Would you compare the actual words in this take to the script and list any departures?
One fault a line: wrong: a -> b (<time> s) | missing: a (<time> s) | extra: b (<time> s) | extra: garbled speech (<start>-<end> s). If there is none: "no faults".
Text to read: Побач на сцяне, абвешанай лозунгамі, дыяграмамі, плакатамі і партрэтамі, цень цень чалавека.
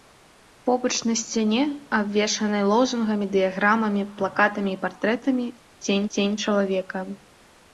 no faults